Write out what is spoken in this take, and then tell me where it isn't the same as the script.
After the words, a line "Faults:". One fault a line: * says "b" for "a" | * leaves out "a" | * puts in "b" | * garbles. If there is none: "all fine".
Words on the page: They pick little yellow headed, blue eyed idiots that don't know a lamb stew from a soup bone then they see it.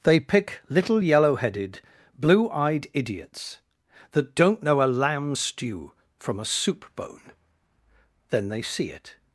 They pick little yellow headed, blue eyed idiots that don't know a lamb stew from a soup bone then they see it.
Faults:
all fine